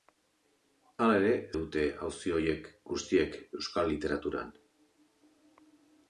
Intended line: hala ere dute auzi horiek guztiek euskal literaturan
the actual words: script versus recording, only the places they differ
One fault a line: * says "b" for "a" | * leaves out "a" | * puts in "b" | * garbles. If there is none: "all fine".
all fine